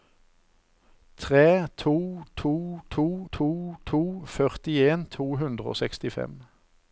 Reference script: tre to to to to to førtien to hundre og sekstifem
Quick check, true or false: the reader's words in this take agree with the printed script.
true